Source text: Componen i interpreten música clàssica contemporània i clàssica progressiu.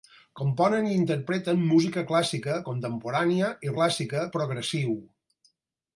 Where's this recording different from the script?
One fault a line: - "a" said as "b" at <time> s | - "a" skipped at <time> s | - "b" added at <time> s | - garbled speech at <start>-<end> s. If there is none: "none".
none